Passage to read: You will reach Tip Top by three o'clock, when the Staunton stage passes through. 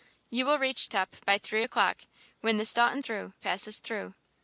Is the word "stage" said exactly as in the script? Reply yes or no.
no